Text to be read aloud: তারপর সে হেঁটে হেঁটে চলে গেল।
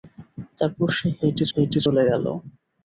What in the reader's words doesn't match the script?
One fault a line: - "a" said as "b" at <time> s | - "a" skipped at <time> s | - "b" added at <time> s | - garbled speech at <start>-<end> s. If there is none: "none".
none